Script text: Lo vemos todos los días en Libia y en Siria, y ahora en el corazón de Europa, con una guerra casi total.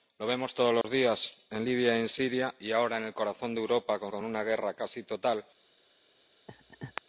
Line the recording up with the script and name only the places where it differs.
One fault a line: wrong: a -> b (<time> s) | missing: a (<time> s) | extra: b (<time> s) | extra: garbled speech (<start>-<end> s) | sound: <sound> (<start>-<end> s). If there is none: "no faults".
sound: dropout (0.8-0.8 s)
extra: con (4.1 s)
sound: laugh (6.5-7.0 s)